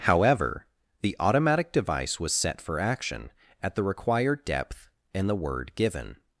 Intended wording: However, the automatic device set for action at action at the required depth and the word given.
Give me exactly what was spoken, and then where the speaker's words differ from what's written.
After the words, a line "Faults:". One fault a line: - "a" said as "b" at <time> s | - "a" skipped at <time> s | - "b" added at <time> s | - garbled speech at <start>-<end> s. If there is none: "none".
However, the automatic device was set for action at the required depth and the word given.
Faults:
- "was" added at 2.2 s
- "action at" skipped at 3.8 s